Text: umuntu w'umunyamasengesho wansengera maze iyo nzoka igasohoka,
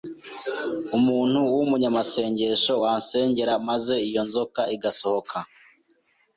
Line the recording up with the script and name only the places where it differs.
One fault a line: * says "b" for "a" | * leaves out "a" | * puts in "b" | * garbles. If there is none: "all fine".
all fine